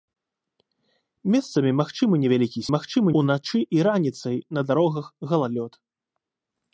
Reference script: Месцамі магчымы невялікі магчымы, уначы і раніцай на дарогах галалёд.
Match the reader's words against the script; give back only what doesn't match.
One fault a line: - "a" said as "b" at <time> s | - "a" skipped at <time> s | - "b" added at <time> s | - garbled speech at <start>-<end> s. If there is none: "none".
none